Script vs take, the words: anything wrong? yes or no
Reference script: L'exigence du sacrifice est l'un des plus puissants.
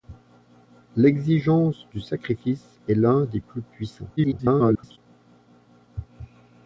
yes